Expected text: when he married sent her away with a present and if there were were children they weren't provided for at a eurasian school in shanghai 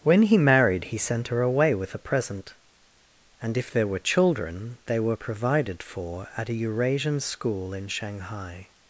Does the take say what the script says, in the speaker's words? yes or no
no